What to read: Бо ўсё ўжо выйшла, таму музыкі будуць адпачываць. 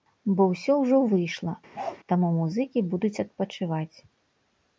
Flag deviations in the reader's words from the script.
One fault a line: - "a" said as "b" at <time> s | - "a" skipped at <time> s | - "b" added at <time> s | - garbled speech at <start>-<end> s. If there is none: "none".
none